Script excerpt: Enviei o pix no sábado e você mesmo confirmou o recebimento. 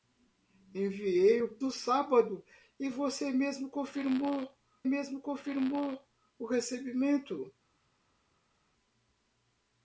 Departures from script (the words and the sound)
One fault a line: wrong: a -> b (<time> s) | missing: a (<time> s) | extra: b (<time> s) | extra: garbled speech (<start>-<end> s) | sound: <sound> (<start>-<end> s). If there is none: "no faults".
missing: pix (1.6 s)
extra: mesmo confirmou (4.8 s)